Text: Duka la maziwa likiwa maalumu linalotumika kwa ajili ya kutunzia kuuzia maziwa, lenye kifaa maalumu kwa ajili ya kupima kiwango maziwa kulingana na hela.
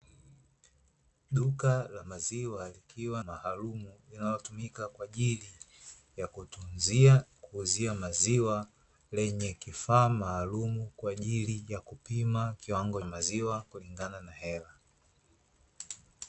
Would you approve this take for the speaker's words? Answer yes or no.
yes